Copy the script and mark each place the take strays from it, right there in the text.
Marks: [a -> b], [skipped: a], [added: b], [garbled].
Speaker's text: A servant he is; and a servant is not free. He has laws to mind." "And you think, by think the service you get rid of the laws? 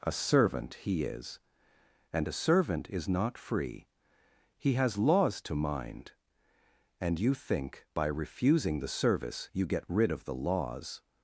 A servant he is; and a servant is not free. He has laws to mind." "And you think, by [think -> refusing] the service you get rid of the laws?